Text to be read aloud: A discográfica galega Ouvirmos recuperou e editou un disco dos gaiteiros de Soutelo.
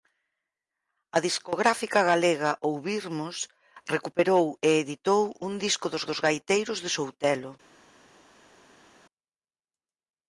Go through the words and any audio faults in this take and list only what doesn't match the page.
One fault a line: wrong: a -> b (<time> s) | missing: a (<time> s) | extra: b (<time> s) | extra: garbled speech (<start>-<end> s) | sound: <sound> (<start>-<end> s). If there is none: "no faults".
extra: dos (6.1 s)